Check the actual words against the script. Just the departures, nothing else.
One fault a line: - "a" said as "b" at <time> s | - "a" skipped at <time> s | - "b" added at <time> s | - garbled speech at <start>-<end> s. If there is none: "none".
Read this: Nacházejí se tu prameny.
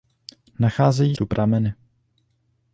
- "se" skipped at 1.1 s